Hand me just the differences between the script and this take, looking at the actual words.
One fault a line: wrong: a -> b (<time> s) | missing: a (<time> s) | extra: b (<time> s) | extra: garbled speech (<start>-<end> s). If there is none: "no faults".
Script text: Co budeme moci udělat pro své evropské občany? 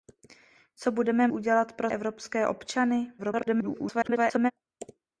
missing: moci (1.3 s)
missing: své (1.9 s)
extra: garbled speech (3.2-4.5 s)